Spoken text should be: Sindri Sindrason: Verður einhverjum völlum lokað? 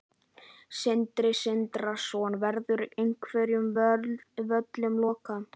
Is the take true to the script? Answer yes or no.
yes